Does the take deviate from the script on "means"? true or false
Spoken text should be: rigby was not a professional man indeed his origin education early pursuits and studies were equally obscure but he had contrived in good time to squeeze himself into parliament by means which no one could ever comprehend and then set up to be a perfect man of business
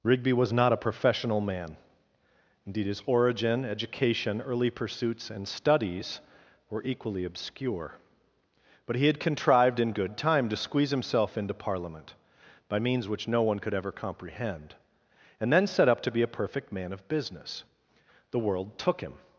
false